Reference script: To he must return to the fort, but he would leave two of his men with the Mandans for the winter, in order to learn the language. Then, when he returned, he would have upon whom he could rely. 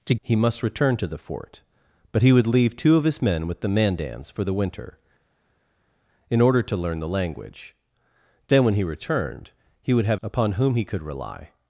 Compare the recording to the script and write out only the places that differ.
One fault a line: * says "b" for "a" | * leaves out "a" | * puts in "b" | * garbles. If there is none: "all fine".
all fine